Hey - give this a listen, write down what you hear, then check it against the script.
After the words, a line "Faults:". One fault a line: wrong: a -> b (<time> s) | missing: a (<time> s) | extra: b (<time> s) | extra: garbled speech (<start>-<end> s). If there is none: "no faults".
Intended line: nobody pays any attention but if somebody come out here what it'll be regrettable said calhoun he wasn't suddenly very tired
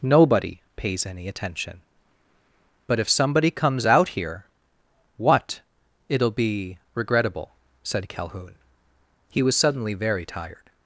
nobody pays any attention but if somebody comes out here what it'll be regrettable said calhoun he was suddenly very tired
Faults:
wrong: come -> comes (3.5 s)
wrong: wasn't -> was (9.4 s)